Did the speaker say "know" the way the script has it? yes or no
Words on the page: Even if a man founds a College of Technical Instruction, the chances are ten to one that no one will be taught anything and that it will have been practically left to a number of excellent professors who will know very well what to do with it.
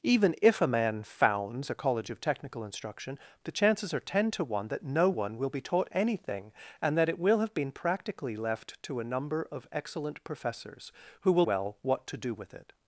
no